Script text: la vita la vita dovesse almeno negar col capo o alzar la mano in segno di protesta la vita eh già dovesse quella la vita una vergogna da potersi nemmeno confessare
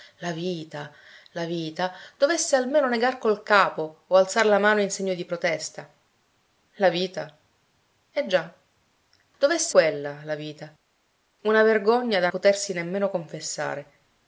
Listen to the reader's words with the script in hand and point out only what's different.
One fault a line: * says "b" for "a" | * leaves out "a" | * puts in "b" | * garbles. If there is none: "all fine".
all fine